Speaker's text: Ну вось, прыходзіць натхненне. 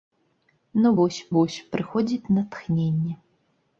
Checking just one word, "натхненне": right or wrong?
right